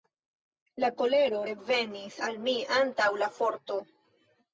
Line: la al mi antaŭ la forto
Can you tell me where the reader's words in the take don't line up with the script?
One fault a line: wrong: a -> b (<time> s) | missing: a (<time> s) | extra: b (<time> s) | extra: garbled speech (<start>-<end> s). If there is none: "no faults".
extra: kolero revenis (1.0 s)